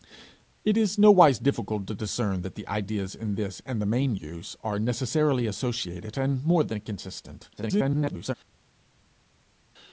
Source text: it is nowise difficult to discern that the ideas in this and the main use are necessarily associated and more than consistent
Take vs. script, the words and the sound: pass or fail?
fail